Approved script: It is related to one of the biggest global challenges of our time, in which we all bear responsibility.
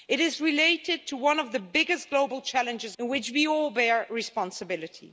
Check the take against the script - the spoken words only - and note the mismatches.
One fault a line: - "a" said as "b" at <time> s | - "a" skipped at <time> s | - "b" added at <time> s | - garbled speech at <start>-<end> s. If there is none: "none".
- "of our time" skipped at 3.0 s